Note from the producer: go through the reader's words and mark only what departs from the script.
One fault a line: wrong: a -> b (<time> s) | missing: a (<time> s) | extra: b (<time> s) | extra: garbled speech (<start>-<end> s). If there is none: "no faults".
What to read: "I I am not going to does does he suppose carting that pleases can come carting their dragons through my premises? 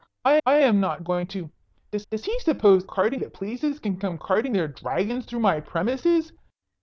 no faults